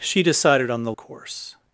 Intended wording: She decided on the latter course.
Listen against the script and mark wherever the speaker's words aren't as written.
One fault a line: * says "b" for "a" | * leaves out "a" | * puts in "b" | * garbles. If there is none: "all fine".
* leaves out "latter"